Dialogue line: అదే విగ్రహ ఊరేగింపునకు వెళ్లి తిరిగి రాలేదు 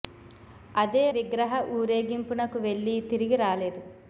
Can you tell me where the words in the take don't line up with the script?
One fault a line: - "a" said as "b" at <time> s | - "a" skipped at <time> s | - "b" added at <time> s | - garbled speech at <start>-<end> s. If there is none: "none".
none